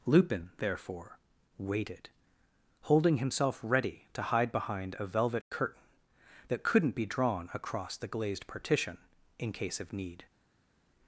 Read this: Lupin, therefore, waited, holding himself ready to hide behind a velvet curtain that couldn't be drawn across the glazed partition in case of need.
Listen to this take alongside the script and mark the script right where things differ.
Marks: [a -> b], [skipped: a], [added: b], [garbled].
Lupin, therefore, waited, holding himself ready to hide behind a velvet curtain that couldn't be drawn across the glazed partition in case of need.